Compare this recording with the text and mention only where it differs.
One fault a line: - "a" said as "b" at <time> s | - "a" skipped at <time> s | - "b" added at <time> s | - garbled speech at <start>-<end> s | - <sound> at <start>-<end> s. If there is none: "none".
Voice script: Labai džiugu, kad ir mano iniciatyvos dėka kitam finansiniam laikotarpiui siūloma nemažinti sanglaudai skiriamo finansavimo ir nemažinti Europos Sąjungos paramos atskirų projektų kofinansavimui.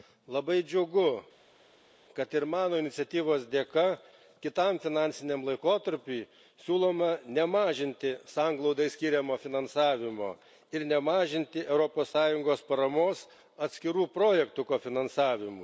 none